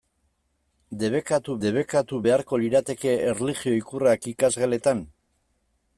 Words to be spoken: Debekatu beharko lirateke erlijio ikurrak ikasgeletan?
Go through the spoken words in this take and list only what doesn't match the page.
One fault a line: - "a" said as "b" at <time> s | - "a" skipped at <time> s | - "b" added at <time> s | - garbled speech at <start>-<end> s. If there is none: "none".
- "debekatu" added at 1.6 s